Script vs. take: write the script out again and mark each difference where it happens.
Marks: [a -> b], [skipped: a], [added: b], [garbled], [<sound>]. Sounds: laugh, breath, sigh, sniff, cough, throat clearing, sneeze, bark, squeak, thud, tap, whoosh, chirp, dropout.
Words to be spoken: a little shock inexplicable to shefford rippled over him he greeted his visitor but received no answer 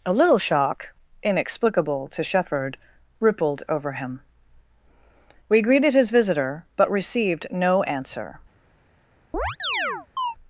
a little shock inexplicable to shefford rippled over him [he -> we] greeted his visitor but received no answer [chirp]